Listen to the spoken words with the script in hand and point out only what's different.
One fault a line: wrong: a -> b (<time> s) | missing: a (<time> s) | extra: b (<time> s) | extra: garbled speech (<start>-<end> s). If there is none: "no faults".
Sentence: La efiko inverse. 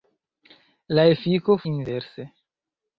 no faults